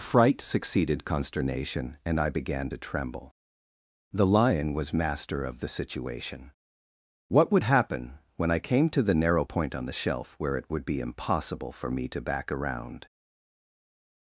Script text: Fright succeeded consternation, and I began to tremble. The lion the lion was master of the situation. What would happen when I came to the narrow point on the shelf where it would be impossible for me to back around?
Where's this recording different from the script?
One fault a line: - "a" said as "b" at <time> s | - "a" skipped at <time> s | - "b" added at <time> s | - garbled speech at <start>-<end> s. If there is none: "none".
- "the lion" skipped at 4.7 s